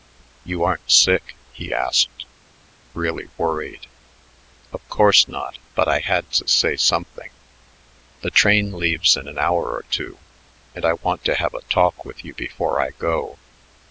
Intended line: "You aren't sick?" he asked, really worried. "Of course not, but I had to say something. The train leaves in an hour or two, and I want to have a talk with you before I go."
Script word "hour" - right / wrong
right